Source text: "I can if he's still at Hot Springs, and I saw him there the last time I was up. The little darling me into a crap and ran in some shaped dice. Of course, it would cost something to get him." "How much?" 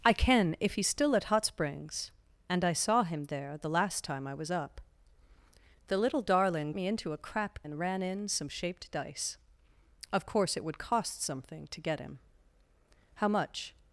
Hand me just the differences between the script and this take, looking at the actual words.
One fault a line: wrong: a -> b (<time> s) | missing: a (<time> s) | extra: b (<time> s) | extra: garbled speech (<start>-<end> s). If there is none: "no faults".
no faults